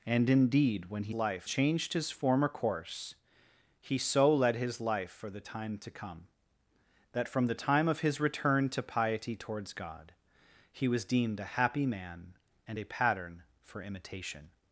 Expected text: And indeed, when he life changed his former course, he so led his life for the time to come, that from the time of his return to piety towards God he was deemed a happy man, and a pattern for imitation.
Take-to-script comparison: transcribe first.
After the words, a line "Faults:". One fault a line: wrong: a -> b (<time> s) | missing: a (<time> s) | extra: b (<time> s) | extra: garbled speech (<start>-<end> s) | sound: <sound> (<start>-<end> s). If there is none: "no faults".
And indeed, when he life changed his former course, he so led his life for the time to come, that from the time of his return to piety towards God he was deemed a happy man, and a pattern for imitation.
Faults:
no faults